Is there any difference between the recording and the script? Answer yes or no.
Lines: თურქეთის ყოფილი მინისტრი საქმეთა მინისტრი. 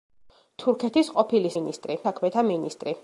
no